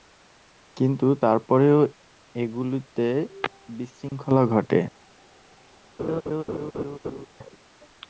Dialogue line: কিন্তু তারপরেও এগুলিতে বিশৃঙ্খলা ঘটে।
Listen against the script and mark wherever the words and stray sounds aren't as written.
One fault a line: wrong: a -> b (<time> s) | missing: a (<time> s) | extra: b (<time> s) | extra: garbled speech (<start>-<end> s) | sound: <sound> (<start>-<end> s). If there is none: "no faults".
sound: dropout (4.1-4.1 s)
sound: laugh (6.0-7.3 s)